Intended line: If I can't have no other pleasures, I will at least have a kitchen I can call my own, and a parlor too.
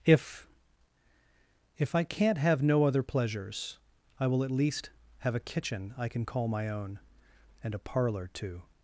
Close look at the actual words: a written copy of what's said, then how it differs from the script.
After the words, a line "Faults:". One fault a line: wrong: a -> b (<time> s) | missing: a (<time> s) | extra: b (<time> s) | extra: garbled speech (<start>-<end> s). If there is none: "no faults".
If if I can't have no other pleasures, I will at least have a kitchen I can call my own, and a parlor too.
Faults:
extra: if (1.8 s)